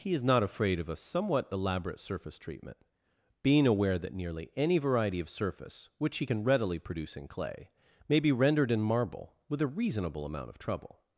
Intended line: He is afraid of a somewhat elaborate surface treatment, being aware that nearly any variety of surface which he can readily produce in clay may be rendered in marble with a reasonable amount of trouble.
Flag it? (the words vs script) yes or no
yes